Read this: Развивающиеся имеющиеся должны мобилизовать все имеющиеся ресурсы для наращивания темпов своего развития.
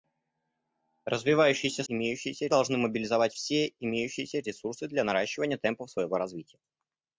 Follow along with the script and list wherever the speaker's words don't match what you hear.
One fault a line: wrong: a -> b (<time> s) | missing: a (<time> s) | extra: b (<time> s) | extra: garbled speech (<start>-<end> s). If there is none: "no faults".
no faults